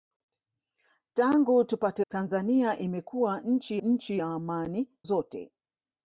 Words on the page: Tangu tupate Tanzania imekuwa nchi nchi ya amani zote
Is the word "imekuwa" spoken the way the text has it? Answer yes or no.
yes